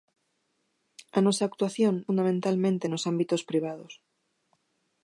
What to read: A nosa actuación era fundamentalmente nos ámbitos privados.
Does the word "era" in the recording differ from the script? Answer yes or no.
yes